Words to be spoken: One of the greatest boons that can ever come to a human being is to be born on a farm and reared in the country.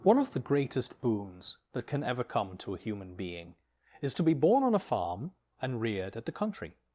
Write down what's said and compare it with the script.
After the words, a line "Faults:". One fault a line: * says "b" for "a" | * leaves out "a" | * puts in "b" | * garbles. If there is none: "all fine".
One of the greatest boons that can ever come to a human being is to be born on a farm and reared at the country.
Faults:
* says "at" for "in"